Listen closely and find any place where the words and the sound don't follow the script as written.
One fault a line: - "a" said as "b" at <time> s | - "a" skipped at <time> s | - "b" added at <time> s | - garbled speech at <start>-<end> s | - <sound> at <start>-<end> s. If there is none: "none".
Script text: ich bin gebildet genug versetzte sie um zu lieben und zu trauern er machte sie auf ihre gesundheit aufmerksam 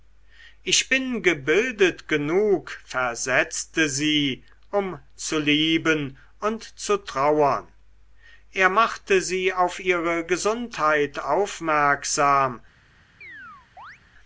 - chirp at 13.2-14.0 s